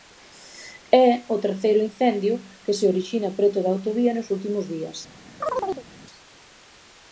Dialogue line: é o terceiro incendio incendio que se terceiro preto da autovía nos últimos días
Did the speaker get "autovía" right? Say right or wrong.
right